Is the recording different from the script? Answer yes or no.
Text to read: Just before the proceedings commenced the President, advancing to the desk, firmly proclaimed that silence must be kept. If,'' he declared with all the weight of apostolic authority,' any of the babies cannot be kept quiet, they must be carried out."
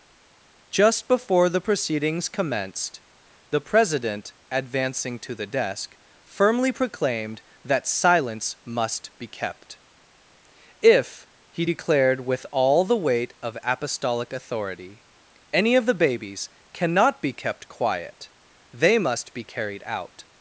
no